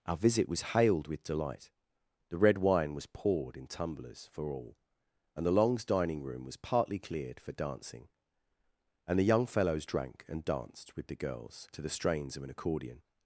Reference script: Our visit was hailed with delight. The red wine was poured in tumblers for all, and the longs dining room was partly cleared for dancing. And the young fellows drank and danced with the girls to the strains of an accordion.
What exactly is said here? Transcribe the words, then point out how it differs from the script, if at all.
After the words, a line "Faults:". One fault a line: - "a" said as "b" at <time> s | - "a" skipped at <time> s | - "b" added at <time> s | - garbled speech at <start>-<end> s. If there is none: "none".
Our visit was hailed with delight. The red wine was poured in tumblers for all, and the longs dining room was partly cleared for dancing. And the young fellows drank and danced with the girls to the strains of an accordion.
Faults:
none